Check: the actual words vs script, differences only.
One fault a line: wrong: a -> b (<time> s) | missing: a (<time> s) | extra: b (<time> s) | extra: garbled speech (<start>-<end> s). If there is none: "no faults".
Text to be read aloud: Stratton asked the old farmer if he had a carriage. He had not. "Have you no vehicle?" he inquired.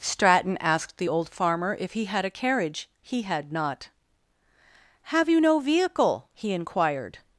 no faults